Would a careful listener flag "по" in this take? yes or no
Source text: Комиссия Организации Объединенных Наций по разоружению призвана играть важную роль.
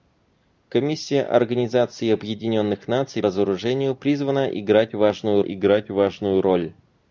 yes